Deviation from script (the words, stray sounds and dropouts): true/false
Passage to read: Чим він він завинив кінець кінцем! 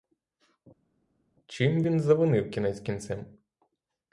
true